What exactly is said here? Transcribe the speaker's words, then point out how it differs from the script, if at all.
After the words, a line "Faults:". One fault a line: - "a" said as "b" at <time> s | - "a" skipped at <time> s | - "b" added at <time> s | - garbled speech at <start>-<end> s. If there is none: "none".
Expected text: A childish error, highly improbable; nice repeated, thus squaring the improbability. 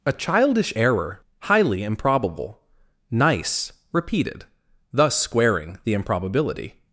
A childish error, highly improbable; nice repeated, thus squaring the improbability.
Faults:
none